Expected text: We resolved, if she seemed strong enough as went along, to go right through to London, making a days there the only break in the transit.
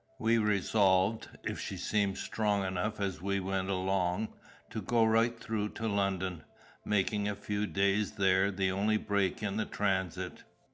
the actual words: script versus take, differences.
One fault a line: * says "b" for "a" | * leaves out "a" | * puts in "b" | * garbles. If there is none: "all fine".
* puts in "we"
* puts in "few"